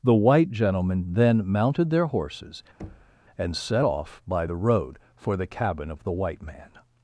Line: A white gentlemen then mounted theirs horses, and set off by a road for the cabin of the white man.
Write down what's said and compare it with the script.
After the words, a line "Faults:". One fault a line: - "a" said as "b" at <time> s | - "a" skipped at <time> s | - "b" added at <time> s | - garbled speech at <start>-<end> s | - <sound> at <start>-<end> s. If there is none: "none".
The white gentlemen then mounted their horses, and set off by the road for the cabin of the white man.
Faults:
- "A" said as "The" at 0.0 s
- "theirs" said as "their" at 1.9 s
- thud at 2.8-3.2 s
- "a" said as "the" at 4.4 s